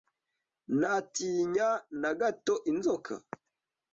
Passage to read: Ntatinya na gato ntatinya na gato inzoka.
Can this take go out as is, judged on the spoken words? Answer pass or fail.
fail